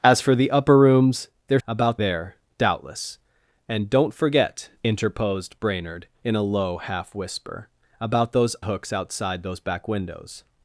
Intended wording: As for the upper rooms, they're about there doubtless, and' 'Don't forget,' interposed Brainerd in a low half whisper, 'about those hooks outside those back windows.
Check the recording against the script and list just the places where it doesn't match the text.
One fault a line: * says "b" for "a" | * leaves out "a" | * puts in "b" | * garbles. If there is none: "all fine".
all fine